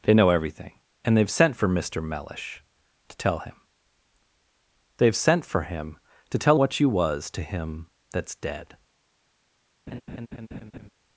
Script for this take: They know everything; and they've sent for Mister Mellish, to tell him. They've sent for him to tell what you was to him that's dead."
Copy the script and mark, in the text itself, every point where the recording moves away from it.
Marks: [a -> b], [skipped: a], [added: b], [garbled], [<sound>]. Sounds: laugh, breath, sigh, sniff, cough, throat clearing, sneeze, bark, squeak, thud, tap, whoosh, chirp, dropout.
They know everything; and they've sent for Mister Mellish, to tell him. They've sent for him to tell what you was to him that's dead." [laugh]